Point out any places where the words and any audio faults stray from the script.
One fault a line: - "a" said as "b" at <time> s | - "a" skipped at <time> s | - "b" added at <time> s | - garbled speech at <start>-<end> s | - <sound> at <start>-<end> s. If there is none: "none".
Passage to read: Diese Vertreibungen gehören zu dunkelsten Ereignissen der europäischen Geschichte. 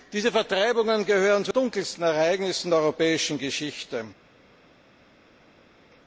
none